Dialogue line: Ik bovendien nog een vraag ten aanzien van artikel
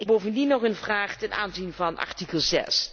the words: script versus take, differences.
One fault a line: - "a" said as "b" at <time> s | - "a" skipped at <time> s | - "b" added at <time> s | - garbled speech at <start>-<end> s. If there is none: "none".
none